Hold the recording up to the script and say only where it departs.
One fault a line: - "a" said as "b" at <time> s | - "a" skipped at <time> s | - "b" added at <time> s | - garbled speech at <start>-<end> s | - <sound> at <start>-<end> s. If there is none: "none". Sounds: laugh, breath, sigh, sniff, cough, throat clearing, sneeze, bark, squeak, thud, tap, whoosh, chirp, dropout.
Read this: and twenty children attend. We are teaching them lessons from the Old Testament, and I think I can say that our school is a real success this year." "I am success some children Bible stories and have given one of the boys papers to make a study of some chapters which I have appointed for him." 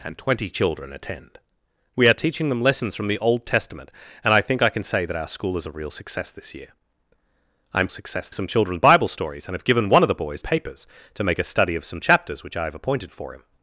none